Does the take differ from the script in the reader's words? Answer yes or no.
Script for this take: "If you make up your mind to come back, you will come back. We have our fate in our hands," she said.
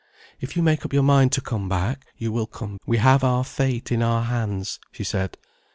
yes